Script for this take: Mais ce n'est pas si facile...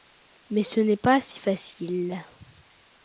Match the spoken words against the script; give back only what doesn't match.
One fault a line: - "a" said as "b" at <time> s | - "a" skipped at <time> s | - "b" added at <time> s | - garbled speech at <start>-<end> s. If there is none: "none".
none